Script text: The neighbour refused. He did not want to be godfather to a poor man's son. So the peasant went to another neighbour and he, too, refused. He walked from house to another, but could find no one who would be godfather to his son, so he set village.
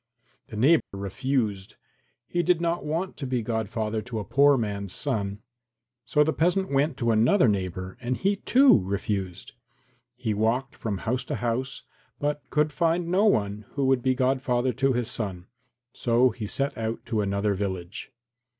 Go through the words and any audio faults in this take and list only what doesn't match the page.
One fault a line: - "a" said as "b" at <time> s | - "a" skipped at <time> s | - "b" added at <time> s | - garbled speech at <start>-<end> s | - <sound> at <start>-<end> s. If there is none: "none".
- dropout at 0.8-0.9 s
- "another" said as "house" at 11.3 s
- "out to another" added at 16.8 s